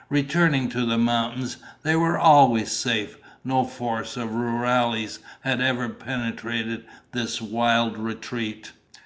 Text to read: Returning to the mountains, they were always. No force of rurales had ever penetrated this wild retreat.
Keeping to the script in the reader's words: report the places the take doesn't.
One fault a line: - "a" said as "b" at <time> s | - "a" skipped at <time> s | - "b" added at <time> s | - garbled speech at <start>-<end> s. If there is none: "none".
- "safe" added at 2.7 s